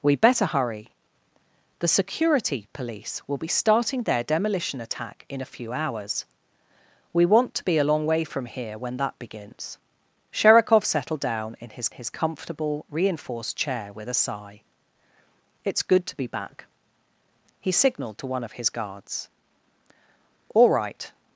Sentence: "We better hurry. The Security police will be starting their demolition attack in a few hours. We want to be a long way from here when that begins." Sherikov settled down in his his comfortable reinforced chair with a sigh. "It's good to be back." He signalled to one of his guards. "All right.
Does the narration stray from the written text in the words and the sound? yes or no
no